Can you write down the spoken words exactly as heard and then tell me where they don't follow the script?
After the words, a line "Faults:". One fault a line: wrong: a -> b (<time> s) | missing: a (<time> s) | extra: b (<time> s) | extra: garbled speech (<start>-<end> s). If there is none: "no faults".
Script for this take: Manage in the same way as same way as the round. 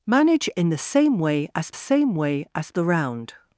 Manage in the same way as same way as the round.
Faults:
no faults